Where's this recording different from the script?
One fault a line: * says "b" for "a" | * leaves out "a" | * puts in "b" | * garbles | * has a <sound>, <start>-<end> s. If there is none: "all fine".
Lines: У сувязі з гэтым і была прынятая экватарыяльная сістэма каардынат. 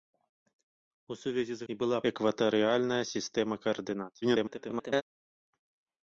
* leaves out "гэтым"
* leaves out "прынятая"
* garbles